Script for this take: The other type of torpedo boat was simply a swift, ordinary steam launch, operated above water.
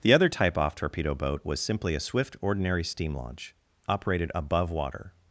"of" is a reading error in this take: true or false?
true